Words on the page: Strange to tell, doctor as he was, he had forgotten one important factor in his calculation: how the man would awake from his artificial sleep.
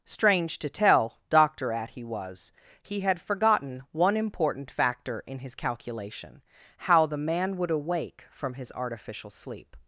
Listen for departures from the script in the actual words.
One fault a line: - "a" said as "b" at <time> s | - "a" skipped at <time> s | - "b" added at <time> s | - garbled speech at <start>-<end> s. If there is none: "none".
- "as" said as "at" at 1.7 s